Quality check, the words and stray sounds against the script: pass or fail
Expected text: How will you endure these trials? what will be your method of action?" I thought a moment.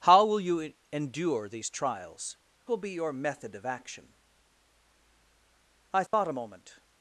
fail